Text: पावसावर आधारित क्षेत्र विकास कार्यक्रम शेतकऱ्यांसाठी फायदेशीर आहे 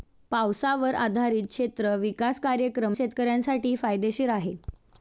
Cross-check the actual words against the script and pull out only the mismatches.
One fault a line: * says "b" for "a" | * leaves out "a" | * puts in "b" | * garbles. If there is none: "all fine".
all fine